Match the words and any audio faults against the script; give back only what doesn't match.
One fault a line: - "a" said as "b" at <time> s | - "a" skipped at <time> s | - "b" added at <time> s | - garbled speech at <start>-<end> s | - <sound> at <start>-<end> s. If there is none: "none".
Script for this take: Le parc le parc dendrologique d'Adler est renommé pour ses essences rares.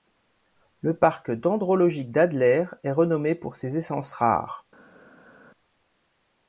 - "le parc" skipped at 1.3 s